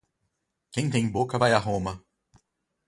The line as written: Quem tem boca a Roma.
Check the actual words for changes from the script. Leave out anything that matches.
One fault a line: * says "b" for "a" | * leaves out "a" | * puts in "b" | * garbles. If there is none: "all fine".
* puts in "vai"